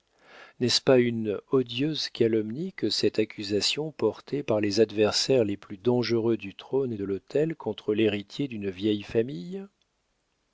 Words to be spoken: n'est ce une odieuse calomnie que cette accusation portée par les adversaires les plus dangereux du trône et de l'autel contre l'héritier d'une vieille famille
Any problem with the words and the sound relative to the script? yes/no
yes